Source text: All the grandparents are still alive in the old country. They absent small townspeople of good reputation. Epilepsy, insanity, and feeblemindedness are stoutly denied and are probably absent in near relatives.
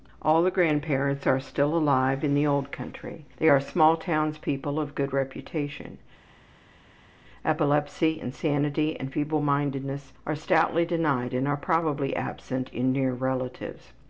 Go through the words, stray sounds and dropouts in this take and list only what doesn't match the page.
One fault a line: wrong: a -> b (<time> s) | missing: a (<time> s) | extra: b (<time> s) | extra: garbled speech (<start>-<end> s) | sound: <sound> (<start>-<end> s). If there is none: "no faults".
wrong: absent -> are (3.5 s)